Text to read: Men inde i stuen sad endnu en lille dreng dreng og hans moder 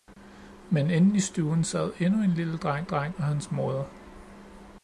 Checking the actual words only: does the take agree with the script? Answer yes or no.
yes